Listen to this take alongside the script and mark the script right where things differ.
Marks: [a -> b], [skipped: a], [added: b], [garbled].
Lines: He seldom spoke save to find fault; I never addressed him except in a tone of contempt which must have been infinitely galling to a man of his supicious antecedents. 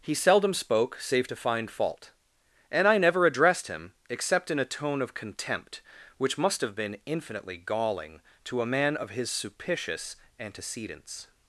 He seldom spoke save to find fault; [added: and] I never addressed him except in a tone of contempt which must have been infinitely galling to a man of his supicious antecedents.